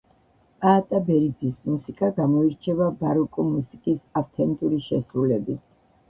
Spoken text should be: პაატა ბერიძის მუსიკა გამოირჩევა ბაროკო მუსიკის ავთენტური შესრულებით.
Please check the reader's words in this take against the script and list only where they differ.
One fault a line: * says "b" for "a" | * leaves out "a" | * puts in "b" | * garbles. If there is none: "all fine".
all fine